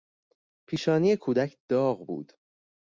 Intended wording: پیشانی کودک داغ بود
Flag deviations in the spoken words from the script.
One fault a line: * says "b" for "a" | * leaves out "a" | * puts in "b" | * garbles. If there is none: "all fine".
all fine